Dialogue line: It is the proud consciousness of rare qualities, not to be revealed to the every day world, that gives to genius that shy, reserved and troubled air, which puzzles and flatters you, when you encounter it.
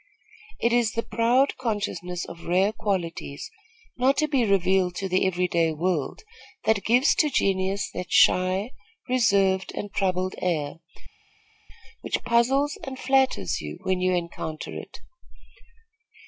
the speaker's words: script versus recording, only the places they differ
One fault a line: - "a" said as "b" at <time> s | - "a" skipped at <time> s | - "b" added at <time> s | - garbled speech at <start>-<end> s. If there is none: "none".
none